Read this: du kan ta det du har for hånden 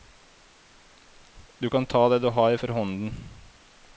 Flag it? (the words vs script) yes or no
no